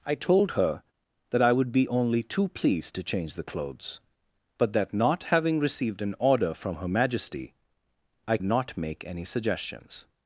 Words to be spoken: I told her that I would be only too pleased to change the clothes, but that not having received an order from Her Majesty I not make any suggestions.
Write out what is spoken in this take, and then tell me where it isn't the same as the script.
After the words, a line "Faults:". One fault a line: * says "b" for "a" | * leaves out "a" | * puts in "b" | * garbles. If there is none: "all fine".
I told her that I would be only too pleased to change the clothes, but that not having received an order from Her Majesty I not make any suggestions.
Faults:
all fine